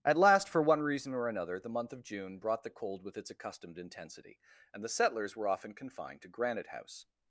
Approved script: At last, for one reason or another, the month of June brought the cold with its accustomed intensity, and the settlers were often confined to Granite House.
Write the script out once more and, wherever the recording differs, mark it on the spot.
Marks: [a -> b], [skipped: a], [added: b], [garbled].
At last, for one reason or another, the month of June brought the cold with its accustomed intensity, and the settlers were often confined to Granite House.